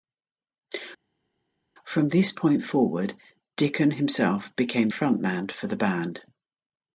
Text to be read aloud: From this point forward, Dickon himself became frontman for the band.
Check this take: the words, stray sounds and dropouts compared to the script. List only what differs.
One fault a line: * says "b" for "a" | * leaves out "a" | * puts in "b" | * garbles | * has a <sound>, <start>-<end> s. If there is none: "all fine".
all fine